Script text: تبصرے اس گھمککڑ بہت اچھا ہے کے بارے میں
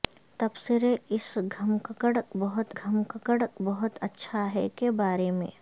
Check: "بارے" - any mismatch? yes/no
no